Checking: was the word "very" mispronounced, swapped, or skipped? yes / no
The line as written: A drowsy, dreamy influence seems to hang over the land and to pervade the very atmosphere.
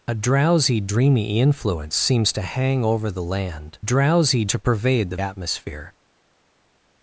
yes